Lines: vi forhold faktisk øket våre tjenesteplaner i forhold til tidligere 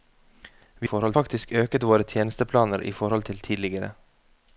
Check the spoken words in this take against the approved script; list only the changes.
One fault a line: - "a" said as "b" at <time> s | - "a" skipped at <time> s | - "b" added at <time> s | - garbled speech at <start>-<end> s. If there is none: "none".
none